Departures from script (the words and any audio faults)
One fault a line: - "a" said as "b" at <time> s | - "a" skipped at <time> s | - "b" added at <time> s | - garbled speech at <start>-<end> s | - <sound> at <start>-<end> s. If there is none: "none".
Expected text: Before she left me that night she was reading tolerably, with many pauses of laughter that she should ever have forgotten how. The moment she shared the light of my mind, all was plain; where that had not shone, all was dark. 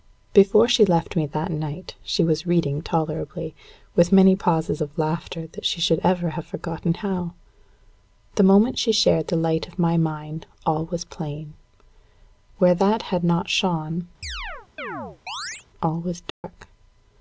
- chirp at 14.2-15.7 s
- dropout at 16.3-16.4 s